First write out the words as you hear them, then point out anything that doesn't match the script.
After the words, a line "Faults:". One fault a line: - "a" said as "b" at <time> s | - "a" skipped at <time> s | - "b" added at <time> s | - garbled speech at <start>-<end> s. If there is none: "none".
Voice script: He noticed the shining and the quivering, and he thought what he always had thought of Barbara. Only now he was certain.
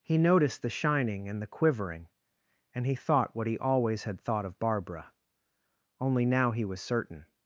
He noticed the shining and the quivering, and he thought what he always had thought of Barbara. Only now he was certain.
Faults:
none